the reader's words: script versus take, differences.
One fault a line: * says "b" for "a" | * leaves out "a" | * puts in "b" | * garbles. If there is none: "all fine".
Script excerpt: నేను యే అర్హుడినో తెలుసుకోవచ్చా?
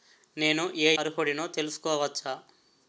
all fine